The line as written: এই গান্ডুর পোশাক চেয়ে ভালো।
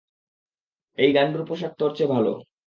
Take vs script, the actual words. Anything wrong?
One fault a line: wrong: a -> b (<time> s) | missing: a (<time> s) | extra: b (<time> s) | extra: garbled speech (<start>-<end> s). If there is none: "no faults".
extra: তোর (1.8 s)